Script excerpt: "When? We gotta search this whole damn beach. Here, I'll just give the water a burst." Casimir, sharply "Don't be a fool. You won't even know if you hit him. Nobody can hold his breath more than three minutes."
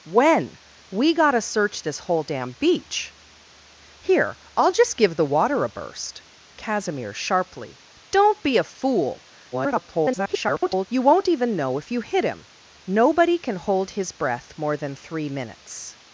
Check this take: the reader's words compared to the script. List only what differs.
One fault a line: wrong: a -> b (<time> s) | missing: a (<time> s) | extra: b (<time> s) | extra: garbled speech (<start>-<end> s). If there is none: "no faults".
extra: garbled speech (9.5-10.9 s)